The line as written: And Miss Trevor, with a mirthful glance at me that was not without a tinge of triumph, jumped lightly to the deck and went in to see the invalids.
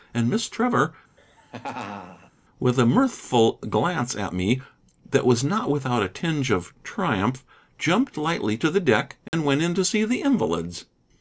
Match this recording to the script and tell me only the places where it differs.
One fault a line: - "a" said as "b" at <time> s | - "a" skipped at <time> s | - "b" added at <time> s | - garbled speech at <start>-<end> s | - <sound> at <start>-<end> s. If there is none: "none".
- laugh at 1.2-2.3 s
- dropout at 9.3-9.3 s